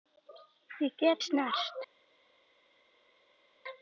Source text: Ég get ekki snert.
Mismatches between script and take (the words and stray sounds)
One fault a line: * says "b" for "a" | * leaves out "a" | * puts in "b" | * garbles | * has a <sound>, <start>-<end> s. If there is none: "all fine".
* leaves out "ekki"